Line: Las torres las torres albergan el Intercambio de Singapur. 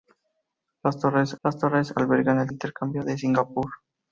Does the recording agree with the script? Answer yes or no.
yes